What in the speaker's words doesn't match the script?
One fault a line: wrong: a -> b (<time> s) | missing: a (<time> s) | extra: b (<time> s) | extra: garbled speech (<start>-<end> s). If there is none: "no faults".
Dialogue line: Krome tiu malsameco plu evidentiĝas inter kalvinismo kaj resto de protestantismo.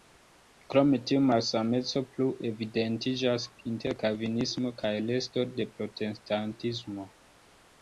no faults